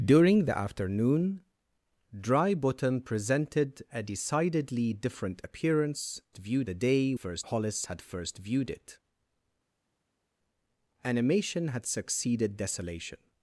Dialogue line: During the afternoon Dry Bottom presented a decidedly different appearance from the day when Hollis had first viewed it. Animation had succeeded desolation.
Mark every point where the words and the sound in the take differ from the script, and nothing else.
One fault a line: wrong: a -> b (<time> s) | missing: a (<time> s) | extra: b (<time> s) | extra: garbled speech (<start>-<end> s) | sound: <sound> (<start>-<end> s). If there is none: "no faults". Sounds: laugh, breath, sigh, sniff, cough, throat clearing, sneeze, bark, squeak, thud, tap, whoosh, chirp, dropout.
wrong: from -> viewed (6.4 s)
wrong: when -> first (7.1 s)